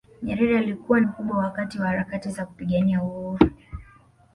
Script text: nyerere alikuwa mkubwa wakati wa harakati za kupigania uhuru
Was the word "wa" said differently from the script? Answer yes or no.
no